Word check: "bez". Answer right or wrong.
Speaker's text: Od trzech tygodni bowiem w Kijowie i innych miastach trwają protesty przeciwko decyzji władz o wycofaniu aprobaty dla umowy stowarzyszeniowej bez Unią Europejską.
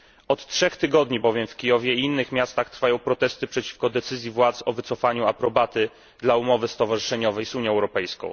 wrong